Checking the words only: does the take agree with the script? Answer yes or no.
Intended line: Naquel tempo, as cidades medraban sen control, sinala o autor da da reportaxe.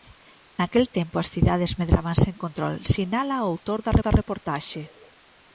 yes